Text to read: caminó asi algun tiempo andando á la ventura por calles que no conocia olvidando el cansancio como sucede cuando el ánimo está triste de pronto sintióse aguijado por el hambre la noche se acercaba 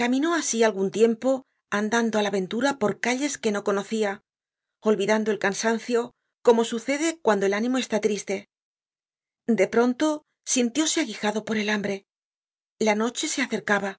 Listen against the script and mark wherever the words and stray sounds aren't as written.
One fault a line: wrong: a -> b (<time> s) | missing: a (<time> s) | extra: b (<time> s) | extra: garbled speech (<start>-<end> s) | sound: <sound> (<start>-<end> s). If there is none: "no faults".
no faults